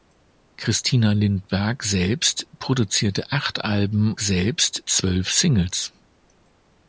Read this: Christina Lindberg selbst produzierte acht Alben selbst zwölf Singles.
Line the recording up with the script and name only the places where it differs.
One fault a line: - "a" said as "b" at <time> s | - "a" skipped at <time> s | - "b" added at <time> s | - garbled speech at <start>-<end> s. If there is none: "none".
none